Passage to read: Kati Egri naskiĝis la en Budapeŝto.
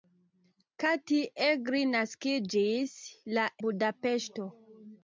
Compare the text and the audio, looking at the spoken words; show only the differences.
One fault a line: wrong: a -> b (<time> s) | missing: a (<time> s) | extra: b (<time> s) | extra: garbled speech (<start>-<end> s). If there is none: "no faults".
missing: en (3.4 s)